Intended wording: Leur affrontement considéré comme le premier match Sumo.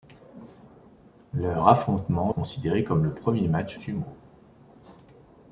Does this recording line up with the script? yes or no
yes